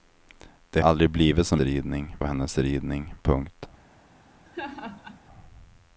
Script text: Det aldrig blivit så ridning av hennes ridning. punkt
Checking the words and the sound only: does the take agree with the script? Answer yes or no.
no